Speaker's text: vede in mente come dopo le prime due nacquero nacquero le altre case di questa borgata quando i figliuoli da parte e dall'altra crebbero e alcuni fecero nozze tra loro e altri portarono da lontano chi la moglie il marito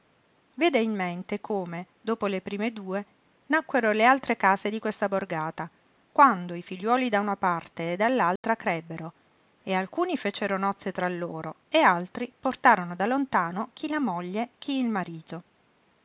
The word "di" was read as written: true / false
true